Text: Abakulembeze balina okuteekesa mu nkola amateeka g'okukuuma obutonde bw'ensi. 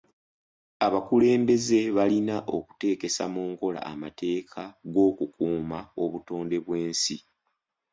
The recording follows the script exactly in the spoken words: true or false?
true